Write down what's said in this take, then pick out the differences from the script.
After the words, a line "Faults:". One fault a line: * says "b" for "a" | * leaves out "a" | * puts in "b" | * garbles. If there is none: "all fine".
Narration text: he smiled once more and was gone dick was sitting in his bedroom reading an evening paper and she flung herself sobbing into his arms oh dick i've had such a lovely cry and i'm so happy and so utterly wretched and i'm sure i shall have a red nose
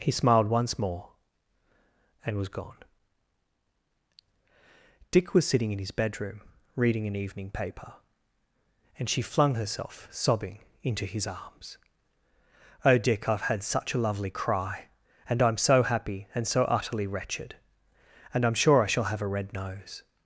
he smiled once more and was gone dick was sitting in his bedroom reading an evening paper and she flung herself sobbing into his arms oh dick i've had such a lovely cry and i'm so happy and so utterly wretched and i'm sure i shall have a red nose
Faults:
all fine